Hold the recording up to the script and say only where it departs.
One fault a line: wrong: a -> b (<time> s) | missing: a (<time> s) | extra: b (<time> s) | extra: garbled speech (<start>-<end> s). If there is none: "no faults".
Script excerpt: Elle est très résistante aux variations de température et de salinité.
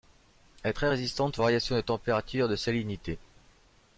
no faults